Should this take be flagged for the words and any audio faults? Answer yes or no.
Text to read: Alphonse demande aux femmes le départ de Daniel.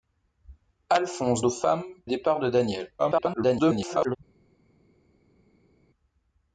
yes